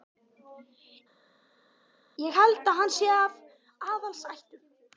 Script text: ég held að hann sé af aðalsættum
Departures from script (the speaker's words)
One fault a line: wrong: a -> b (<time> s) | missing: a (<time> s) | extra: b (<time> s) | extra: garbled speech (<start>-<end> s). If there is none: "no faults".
no faults